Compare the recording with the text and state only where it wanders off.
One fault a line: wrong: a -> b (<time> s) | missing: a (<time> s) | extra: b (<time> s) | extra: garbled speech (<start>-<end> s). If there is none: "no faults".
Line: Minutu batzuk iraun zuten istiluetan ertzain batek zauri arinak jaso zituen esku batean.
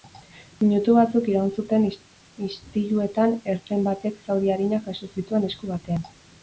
no faults